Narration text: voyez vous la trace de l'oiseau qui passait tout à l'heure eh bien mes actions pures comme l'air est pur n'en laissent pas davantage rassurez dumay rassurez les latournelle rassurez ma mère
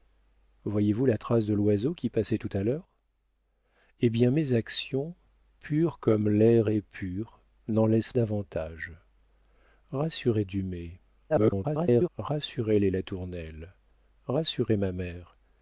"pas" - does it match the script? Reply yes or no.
no